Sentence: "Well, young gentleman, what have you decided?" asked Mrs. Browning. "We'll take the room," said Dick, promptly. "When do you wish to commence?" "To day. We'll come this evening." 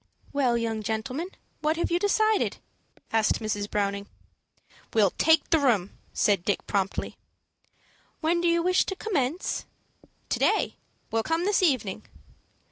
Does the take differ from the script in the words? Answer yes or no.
no